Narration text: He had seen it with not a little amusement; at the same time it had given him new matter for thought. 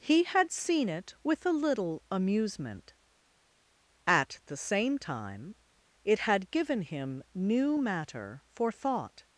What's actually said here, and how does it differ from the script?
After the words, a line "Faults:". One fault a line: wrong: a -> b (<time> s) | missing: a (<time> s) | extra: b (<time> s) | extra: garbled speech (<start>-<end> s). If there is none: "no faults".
He had seen it with a little amusement; at the same time it had given him new matter for thought.
Faults:
missing: not (1.4 s)